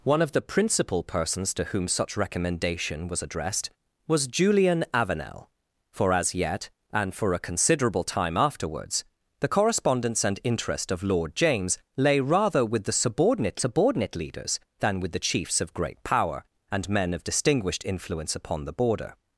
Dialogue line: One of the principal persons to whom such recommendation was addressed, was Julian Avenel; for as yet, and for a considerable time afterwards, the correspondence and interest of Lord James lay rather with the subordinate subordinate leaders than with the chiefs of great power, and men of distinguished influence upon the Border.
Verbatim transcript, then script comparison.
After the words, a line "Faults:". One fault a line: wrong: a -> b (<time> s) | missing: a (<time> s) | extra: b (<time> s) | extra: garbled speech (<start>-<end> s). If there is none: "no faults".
One of the principal persons to whom such recommendation was addressed, was Julian Avenel; for as yet, and for a considerable time afterwards, the correspondence and interest of Lord James lay rather with the subordinate subordinate leaders than with the chiefs of great power, and men of distinguished influence upon the Border.
Faults:
no faults